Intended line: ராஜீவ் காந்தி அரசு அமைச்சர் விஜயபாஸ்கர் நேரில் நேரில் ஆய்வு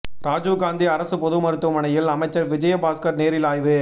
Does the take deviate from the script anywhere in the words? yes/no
yes